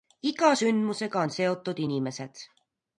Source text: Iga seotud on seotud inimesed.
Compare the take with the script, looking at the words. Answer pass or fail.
fail